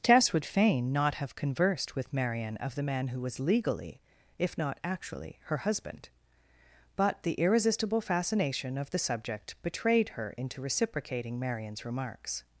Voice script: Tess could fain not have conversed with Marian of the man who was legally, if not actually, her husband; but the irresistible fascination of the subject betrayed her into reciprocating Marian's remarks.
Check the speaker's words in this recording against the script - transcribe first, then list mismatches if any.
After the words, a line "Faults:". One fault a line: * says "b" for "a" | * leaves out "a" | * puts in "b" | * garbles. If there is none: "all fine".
Tess would fain not have conversed with Marian of the man who was legally, if not actually, her husband; but the irresistible fascination of the subject betrayed her into reciprocating Marian's remarks.
Faults:
* says "would" for "could"